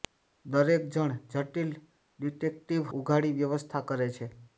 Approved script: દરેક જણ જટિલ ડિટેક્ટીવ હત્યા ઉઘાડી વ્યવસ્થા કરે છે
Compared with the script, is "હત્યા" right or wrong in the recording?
wrong